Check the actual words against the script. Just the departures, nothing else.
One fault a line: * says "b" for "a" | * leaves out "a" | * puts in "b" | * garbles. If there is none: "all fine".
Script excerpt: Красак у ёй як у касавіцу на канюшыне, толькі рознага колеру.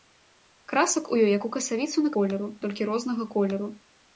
* says "колеру" for "канюшыне"